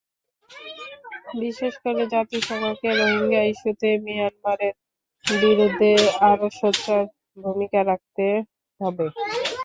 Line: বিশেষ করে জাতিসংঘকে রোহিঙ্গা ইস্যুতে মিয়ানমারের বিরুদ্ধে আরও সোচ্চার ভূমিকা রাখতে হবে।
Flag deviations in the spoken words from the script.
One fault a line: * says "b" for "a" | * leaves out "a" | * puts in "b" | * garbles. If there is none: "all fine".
all fine